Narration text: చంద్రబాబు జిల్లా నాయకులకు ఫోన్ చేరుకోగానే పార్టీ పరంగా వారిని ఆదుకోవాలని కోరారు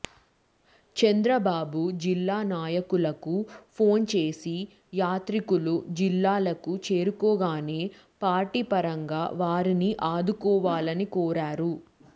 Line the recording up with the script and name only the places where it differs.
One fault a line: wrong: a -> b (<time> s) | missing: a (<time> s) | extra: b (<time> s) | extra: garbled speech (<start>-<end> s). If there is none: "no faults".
extra: చేసి యాత్రికులు జిల్లాలకు (4.1 s)